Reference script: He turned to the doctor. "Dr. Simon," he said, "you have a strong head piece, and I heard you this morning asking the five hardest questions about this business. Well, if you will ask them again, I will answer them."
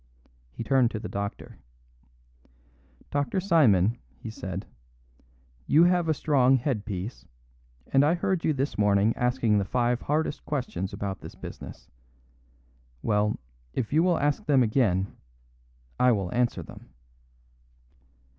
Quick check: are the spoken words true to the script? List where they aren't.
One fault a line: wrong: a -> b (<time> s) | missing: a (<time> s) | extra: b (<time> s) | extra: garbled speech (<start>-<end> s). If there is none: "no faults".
no faults